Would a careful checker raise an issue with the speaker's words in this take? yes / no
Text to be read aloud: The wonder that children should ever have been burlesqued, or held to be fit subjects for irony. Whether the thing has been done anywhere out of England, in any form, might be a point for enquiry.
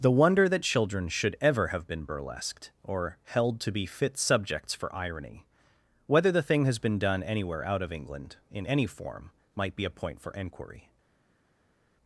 no